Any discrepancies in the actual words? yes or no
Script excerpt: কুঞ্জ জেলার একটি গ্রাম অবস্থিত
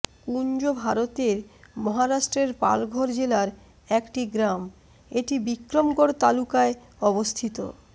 yes